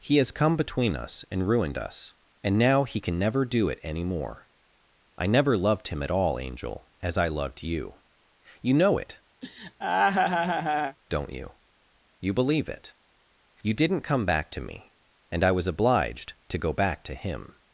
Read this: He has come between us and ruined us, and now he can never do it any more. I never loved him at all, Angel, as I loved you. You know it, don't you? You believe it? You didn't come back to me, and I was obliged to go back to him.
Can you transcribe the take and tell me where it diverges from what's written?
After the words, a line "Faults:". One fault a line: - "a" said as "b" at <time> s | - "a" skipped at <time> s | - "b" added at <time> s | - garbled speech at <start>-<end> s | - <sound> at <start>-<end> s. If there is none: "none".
He has come between us and ruined us, and now he can never do it any more. I never loved him at all, Angel, as I loved you. You know it, don't you? You believe it? You didn't come back to me, and I was obliged to go back to him.
Faults:
- laugh at 9.4-11.0 s